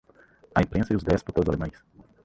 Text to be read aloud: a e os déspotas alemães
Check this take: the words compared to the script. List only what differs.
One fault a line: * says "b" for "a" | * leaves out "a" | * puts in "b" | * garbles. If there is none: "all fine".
* puts in "imprensa"